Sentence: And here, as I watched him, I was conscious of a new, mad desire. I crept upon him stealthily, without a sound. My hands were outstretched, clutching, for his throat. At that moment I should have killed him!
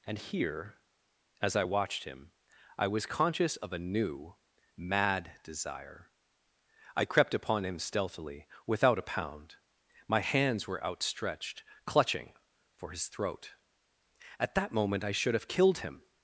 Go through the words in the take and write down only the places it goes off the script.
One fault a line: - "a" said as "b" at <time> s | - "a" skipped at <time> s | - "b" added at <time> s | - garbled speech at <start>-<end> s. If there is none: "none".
- "sound" said as "pound" at 9.0 s